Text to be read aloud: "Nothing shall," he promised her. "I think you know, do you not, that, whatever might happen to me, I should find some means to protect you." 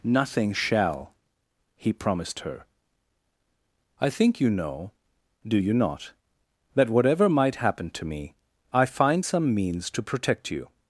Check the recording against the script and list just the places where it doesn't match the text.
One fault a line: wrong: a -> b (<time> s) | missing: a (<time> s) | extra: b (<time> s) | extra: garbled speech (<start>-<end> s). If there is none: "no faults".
missing: should (8.9 s)